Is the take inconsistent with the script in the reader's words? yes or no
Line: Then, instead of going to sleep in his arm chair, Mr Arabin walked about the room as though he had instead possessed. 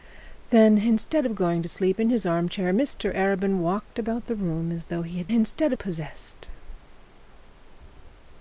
no